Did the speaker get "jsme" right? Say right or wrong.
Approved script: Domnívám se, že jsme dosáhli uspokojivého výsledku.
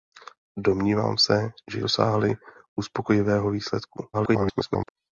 wrong